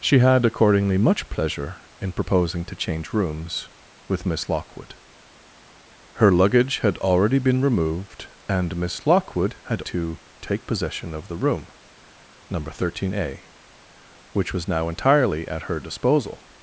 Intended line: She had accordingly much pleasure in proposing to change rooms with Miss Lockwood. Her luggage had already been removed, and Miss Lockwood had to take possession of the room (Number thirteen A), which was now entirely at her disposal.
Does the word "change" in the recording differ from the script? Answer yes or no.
no